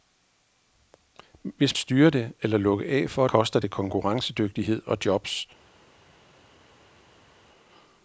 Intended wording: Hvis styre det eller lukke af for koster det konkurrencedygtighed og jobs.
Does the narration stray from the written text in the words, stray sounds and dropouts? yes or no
no